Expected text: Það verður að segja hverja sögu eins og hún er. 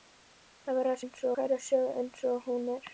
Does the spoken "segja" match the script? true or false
false